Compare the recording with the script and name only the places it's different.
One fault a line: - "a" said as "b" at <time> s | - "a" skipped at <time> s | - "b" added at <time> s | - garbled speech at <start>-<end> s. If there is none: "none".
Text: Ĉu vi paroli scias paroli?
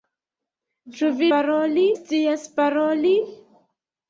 none